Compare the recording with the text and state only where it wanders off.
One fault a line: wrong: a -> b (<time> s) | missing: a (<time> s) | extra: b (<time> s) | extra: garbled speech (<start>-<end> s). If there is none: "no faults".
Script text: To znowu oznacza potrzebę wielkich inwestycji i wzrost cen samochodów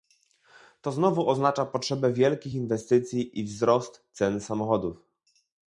no faults